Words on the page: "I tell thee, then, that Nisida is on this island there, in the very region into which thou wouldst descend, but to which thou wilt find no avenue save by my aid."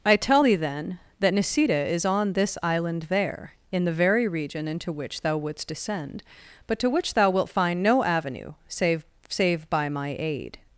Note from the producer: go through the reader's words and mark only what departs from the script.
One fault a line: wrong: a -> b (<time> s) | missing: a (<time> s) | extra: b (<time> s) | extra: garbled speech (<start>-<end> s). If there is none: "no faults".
extra: save (9.3 s)